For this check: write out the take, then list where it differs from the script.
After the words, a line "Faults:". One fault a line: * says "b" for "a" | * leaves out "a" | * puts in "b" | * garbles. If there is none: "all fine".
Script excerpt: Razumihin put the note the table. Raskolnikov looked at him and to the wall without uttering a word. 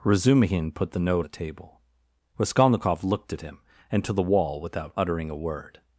Razumihin put the note the table. Raskolnikov looked at him and to the wall without uttering a word.
Faults:
all fine